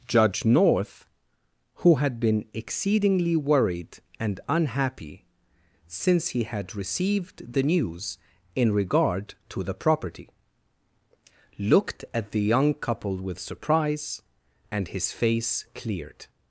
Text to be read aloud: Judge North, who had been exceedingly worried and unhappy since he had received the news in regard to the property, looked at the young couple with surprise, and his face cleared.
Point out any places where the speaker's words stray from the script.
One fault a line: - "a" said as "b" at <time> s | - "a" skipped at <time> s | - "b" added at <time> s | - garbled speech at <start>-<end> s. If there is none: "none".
none